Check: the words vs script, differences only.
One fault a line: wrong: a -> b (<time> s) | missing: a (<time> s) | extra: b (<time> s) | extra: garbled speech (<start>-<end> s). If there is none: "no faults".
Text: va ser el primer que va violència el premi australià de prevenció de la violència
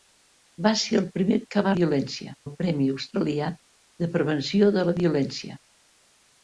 no faults